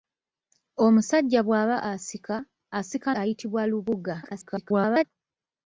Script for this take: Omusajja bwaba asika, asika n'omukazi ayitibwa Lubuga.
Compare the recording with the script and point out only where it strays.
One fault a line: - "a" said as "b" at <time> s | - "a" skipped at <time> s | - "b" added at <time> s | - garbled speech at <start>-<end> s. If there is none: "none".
- "n'omukazi" skipped at 3.1 s
- garbled speech at 4.2-5.0 s